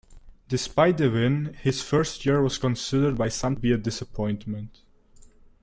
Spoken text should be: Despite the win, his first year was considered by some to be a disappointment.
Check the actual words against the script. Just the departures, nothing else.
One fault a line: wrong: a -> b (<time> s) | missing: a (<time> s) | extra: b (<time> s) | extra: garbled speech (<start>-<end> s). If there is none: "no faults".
missing: to (3.5 s)